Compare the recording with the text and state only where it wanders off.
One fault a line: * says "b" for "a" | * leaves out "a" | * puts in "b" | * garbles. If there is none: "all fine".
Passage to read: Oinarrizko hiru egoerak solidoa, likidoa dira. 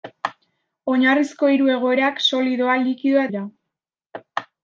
all fine